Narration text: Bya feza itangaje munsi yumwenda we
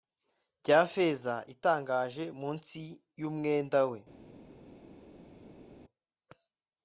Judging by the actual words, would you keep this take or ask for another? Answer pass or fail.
pass